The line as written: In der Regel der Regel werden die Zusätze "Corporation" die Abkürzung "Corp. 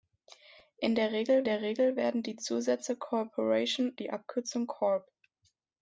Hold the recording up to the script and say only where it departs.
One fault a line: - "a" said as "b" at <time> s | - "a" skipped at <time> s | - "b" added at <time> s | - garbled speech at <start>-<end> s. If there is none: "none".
none